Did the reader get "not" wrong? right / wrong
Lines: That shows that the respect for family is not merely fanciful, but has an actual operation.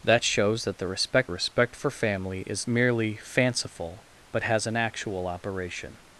wrong